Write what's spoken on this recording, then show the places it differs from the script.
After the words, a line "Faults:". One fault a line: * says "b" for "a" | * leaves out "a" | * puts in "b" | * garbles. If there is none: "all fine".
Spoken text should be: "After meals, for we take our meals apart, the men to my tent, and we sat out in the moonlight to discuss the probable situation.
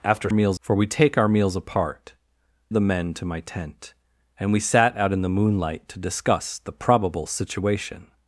"After meals, for we take our meals apart, the men to my tent, and we sat out in the moonlight to discuss the probable situation.
Faults:
all fine